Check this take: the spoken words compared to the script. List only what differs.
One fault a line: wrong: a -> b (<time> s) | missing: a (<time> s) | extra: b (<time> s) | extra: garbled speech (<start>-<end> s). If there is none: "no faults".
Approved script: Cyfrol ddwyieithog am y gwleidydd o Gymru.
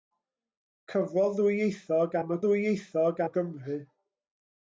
wrong: gwleidydd -> ddwyieithog (2.4 s)